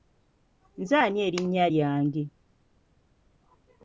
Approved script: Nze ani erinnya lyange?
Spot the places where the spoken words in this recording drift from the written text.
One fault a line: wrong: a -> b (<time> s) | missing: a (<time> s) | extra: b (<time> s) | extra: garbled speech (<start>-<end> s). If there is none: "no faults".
no faults